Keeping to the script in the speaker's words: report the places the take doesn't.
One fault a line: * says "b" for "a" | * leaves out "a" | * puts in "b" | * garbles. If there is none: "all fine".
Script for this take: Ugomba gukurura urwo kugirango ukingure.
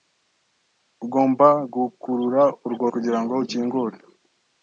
all fine